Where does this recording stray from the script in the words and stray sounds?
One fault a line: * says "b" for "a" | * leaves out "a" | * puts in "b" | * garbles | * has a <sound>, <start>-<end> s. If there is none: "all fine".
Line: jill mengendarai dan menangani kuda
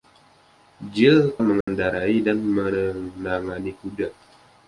* has a dropout, 1.6-1.7 s